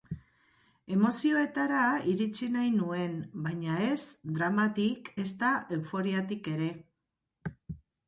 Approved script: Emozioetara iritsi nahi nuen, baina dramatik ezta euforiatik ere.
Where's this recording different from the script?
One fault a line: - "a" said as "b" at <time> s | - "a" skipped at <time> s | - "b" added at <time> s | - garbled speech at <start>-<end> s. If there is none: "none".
- "ez" added at 3.9 s